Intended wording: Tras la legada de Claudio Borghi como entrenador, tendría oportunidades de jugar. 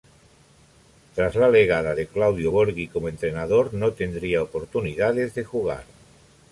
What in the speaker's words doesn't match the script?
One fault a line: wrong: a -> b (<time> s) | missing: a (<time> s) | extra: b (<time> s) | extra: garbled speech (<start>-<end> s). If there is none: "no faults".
extra: no (3.7 s)